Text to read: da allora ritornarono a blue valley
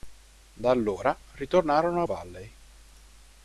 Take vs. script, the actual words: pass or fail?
fail